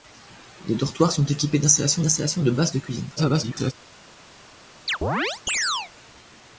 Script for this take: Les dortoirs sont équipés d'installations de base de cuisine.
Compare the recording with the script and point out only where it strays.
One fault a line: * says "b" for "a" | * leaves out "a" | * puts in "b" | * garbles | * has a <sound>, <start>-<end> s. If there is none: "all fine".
* puts in "d'installations"
* garbles
* has a chirp, 4.9-5.9 s